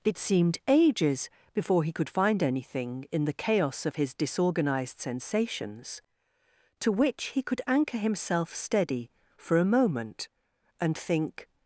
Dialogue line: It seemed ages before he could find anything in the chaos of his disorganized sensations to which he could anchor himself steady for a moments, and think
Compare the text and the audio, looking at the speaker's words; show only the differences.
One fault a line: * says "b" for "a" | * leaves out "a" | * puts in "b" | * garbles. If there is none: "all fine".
* says "moment" for "moments"